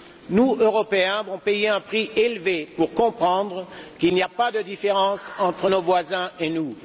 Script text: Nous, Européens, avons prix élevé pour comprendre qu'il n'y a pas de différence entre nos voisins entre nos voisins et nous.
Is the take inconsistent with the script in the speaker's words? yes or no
yes